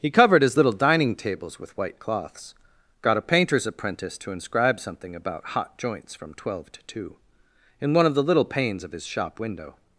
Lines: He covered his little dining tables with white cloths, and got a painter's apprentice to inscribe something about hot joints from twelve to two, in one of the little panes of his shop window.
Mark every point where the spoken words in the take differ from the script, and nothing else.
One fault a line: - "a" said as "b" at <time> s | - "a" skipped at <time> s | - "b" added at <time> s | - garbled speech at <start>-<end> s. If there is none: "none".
- "and" skipped at 2.6 s